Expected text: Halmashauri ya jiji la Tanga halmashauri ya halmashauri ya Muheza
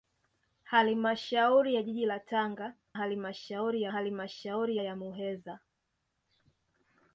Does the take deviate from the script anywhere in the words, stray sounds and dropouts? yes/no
no